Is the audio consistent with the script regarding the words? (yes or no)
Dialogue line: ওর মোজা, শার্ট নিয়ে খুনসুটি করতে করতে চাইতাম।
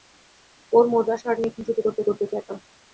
yes